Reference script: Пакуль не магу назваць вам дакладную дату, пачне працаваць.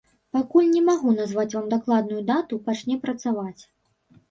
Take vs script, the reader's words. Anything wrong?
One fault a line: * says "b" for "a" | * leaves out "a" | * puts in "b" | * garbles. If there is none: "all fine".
all fine